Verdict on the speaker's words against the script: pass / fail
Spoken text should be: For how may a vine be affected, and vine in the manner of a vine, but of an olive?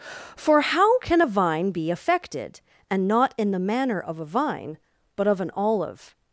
fail